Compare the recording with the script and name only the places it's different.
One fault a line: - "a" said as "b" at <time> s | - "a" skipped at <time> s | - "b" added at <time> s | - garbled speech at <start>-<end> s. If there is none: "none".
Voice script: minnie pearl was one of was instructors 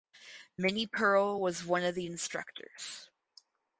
- "was" said as "the" at 1.9 s